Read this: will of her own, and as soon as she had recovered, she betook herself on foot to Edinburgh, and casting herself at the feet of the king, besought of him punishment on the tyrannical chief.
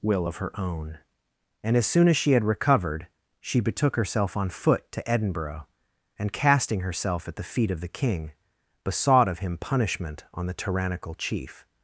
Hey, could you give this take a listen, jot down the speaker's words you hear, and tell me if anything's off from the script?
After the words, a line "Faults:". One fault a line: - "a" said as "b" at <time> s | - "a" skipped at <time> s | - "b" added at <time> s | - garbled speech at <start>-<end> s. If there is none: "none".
will of her own, and as soon as she had recovered, she betook herself on foot to Edinburgh, and casting herself at the feet of the king, besought of him punishment on the tyrannical chief.
Faults:
none